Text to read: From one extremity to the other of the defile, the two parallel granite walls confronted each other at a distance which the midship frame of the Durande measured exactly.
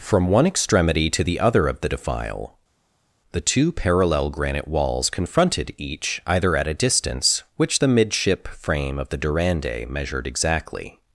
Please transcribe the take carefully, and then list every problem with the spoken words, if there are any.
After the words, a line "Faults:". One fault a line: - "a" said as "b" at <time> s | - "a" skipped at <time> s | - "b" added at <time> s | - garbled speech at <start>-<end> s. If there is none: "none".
From one extremity to the other of the defile, the two parallel granite walls confronted each either at a distance which the midship frame of the Durande measured exactly.
Faults:
- "other" said as "either" at 6.3 s